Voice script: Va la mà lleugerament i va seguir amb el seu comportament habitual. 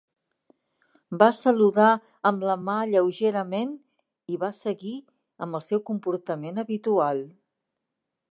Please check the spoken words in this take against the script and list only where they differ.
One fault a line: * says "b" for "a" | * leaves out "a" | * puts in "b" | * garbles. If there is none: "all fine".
* puts in "saludar amb"